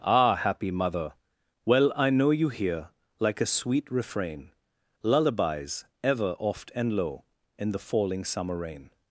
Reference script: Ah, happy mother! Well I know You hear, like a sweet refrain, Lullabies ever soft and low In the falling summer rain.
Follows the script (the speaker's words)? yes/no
no